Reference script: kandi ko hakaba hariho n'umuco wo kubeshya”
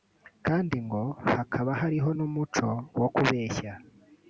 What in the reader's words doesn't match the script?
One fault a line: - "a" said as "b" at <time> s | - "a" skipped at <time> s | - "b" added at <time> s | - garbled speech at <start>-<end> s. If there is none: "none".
- "ko" said as "ngo" at 0.8 s